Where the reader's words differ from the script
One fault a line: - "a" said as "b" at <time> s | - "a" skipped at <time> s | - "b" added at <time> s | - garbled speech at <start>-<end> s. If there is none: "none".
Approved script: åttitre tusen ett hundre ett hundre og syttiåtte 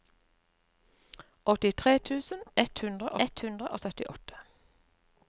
none